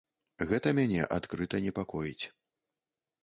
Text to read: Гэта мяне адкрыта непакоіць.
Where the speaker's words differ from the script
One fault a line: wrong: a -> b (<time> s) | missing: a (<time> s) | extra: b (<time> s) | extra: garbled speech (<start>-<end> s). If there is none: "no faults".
no faults